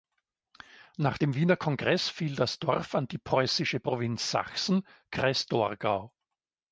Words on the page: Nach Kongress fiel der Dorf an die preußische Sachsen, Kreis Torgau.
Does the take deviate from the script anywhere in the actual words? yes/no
yes